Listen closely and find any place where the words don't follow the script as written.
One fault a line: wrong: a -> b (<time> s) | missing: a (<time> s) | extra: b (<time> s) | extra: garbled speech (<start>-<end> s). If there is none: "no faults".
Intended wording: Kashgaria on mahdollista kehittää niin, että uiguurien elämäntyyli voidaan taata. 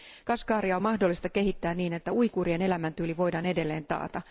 extra: edelleen (3.5 s)